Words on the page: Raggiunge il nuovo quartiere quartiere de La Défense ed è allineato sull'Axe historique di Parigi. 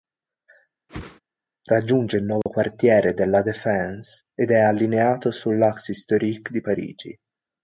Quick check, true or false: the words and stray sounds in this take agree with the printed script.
false